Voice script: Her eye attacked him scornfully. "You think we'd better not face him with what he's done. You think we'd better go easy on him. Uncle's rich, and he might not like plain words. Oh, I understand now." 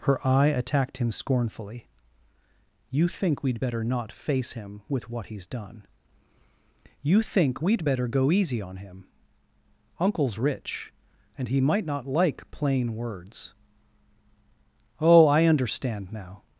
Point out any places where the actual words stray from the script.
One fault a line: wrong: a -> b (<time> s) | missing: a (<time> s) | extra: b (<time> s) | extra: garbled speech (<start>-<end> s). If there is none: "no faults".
no faults